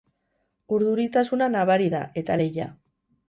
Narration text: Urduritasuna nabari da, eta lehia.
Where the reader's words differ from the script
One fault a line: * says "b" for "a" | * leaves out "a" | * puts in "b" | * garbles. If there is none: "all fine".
all fine